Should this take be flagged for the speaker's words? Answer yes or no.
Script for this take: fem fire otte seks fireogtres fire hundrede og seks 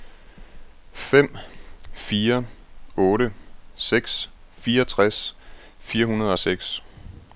no